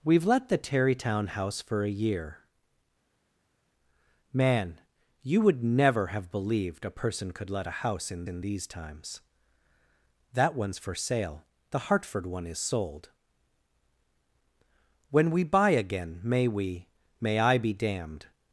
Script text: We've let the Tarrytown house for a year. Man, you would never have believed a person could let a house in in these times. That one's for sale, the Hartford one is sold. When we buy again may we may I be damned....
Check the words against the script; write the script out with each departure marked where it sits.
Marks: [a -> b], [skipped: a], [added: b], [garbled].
We've let the Tarrytown house for a year. Man, you would never have believed a person could let a house in in these times. That one's for sale, the Hartford one is sold. When we buy again may we may I be damned....